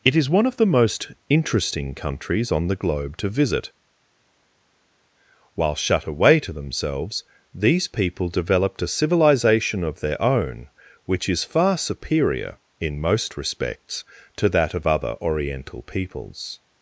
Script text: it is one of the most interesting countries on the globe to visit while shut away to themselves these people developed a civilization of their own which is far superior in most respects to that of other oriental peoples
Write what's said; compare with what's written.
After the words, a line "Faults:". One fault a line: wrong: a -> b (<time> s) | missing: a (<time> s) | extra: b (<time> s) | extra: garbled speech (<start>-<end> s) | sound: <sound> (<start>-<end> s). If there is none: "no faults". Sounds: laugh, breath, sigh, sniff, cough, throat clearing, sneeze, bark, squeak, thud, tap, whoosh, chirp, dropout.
it is one of the most interesting countries on the globe to visit while shut away to themselves these people developed a civilization of their own which is far superior in most respects to that of other oriental peoples
Faults:
no faults